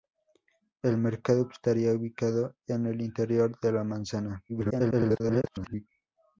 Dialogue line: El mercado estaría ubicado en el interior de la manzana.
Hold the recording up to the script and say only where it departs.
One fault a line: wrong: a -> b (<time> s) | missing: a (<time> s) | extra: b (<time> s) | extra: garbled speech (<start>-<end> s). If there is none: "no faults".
extra: garbled speech (4.5-5.9 s)